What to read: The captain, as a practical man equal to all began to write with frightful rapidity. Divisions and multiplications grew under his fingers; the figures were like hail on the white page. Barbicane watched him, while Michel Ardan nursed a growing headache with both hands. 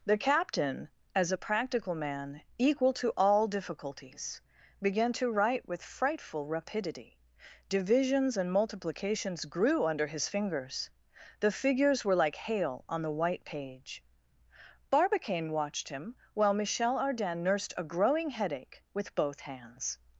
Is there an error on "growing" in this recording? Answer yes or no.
no